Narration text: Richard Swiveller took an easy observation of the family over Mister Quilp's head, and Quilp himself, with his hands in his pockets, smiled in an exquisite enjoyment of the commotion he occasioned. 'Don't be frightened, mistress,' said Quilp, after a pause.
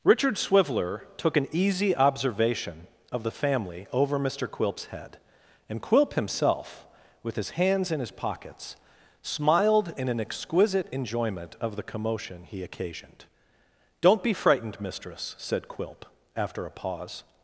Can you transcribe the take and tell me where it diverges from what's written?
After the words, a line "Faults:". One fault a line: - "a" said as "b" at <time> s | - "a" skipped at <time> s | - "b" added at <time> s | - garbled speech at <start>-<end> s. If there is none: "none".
Richard Swiveller took an easy observation of the family over Mister Quilp's head, and Quilp himself, with his hands in his pockets, smiled in an exquisite enjoyment of the commotion he occasioned. 'Don't be frightened, mistress,' said Quilp, after a pause.
Faults:
none